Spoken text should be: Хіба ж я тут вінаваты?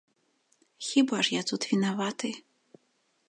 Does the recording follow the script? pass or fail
pass